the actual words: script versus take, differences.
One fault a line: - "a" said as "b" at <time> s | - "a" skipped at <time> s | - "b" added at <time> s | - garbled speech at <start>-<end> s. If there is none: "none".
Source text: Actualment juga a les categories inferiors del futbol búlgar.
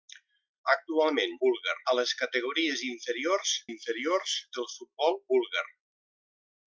- "juga" said as "búlgar" at 1.4 s
- "inferiors" added at 3.7 s